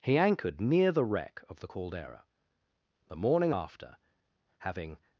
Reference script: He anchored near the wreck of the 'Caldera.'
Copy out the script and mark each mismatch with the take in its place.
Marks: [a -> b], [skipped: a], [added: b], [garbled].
He anchored near the wreck of the 'Caldera.' [added: The morning after having]